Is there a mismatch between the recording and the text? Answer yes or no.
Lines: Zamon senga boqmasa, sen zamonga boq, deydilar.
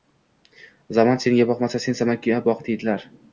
no